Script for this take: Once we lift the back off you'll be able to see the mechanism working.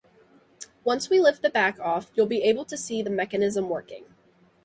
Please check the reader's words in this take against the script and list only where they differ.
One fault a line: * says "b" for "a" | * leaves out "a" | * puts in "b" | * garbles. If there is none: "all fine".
all fine